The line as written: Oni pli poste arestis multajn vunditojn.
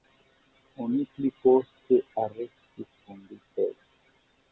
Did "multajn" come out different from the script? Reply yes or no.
yes